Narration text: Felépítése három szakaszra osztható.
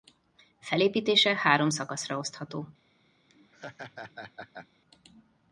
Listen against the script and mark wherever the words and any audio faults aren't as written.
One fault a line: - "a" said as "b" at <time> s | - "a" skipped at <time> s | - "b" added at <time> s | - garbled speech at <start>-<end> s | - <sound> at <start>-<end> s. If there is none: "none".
- laugh at 3.3-4.7 s